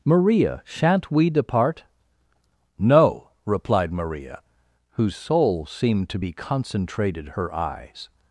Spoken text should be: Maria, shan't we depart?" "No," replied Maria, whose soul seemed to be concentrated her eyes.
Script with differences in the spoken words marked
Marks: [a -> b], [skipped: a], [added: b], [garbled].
Maria, shan't we depart?" "No," replied Maria, whose soul seemed to be concentrated her eyes.